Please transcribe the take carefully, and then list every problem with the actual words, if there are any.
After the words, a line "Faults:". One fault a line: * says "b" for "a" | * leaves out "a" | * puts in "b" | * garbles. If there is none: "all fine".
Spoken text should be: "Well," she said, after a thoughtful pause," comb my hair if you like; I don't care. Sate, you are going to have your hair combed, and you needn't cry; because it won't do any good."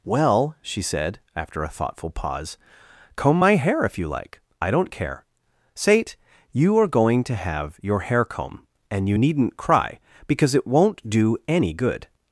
"Well," she said, after a thoughtful pause," comb my hair if you like; I don't care. Sate, you are going to have your hair comb, and you needn't cry; because it won't do any good."
Faults:
* says "comb" for "combed"